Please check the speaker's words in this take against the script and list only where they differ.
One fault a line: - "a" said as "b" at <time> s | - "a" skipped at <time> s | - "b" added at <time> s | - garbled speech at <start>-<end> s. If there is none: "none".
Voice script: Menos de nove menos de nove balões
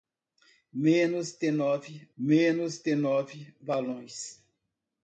none